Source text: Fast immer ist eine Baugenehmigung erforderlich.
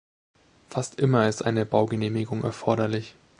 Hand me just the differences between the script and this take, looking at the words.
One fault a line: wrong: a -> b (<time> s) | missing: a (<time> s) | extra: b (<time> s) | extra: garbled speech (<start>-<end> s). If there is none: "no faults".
no faults